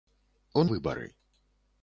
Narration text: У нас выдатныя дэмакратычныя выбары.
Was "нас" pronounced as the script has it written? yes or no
no